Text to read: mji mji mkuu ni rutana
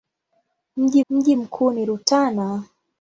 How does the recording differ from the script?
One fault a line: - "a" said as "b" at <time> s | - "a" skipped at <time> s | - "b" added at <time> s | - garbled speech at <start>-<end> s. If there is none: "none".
none